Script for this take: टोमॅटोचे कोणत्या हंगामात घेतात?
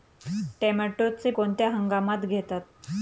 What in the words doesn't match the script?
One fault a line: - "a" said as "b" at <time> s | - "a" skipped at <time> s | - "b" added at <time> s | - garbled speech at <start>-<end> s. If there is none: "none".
none